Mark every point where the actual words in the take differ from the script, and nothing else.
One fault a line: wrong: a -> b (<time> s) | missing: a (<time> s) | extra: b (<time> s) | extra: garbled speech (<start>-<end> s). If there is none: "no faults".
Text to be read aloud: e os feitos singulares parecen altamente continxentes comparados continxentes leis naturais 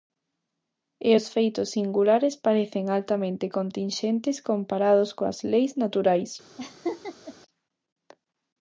wrong: continxentes -> coas (5.2 s)